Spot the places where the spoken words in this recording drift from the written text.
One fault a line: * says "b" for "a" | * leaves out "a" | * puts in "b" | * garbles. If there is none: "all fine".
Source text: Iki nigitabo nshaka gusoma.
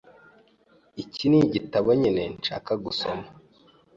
* puts in "nyine"